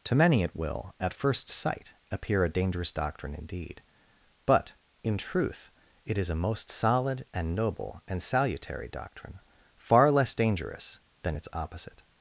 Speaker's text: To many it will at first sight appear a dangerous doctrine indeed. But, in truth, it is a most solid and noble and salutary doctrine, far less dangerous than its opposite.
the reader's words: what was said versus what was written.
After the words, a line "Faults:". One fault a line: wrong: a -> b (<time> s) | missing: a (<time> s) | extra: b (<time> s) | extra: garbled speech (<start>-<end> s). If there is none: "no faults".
To many it will at first sight appear a dangerous doctrine indeed. But, in truth, it is a most solid and noble and salutary doctrine, far less dangerous than its opposite.
Faults:
no faults